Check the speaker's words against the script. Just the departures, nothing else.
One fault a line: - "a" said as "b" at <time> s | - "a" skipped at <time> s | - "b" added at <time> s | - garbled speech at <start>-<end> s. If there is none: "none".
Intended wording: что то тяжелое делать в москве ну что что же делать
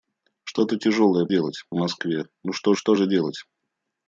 none